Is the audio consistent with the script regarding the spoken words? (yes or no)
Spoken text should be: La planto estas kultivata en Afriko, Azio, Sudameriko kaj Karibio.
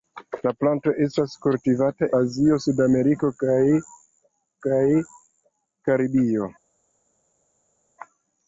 no